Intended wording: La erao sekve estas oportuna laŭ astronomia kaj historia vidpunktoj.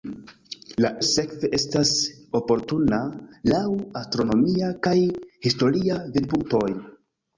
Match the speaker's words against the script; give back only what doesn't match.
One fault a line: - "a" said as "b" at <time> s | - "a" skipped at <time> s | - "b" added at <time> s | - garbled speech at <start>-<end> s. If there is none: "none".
- "erao" skipped at 0.9 s